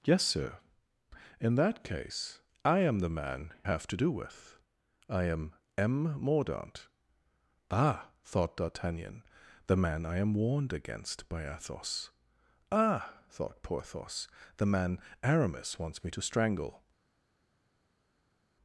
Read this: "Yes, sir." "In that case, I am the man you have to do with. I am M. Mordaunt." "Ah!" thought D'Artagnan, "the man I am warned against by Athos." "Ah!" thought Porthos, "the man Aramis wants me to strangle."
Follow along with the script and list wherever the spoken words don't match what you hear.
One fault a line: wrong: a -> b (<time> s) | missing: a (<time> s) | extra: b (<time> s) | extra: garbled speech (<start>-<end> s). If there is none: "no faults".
missing: you (3.5 s)